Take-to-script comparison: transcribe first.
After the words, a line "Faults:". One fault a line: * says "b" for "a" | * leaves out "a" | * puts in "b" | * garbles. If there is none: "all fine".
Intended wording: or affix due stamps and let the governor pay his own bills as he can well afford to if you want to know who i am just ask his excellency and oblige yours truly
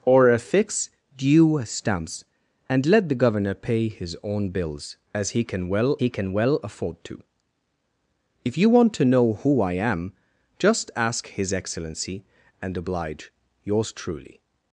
or affix due stamps and let the governor pay his own bills as he can well he can well afford to if you want to know who i am just ask his excellency and oblige yours truly
Faults:
* puts in "he can well"